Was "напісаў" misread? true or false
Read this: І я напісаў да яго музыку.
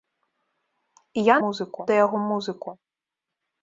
true